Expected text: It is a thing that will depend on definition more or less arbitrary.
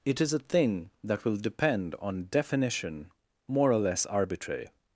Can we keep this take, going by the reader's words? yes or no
yes